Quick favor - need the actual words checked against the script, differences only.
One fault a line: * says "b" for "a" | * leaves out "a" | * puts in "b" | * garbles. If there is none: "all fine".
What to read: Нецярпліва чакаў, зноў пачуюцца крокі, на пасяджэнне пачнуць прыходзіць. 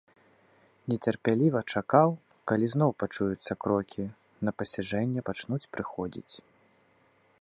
* puts in "калі"